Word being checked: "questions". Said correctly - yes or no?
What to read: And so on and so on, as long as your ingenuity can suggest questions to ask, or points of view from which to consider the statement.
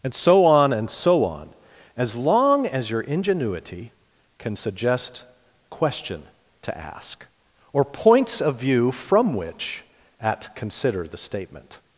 no